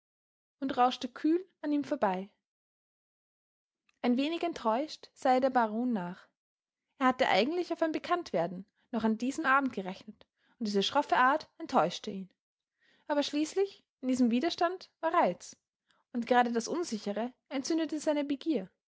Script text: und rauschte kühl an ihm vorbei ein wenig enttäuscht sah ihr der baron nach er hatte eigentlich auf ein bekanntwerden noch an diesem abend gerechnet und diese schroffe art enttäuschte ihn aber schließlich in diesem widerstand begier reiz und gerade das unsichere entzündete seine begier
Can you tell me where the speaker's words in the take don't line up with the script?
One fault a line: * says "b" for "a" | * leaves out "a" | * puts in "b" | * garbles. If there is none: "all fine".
* says "war" for "begier"